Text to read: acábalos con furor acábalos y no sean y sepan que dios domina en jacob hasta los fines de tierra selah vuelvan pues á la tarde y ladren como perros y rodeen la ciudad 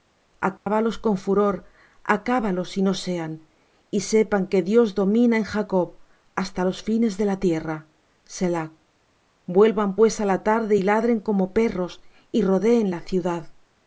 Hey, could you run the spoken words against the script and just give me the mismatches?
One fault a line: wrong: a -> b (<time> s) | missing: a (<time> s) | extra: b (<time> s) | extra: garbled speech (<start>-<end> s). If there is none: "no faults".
extra: la (7.2 s)